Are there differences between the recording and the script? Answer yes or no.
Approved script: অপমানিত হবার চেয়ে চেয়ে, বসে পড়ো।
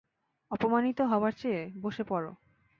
yes